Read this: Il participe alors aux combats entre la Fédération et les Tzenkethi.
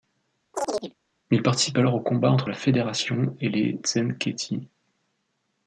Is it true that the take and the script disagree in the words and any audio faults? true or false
true